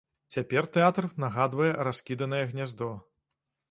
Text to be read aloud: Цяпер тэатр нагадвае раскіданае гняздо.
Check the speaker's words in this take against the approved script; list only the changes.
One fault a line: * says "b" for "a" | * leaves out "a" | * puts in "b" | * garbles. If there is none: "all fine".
all fine